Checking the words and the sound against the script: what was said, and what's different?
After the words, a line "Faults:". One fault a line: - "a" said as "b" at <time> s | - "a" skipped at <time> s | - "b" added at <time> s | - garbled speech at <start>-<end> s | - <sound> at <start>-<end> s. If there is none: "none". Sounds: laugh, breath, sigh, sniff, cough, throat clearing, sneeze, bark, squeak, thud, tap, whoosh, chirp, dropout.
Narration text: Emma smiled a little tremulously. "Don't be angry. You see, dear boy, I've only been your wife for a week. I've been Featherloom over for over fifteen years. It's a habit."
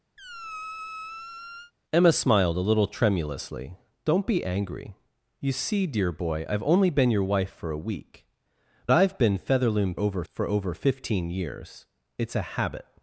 Emma smiled a little tremulously. "Don't be angry. You see, dear boy, I've only been your wife for a week. I've been Featherloom over for over fifteen years. It's a habit."
Faults:
- squeak at 0.2-1.7 s